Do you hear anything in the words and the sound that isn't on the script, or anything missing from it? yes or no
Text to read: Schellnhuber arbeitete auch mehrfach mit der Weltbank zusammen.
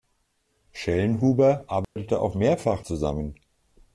yes